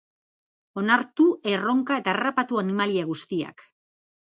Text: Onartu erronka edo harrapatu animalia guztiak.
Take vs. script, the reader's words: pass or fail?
fail